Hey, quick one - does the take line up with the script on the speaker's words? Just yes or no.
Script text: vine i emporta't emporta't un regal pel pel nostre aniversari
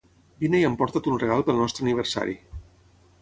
no